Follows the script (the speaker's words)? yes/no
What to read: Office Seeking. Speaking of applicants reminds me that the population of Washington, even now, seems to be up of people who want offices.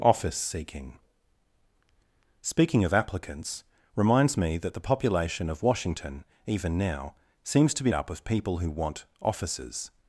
yes